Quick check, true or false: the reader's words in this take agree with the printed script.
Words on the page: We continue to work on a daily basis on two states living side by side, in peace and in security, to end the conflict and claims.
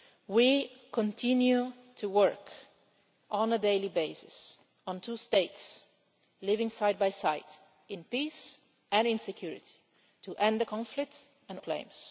true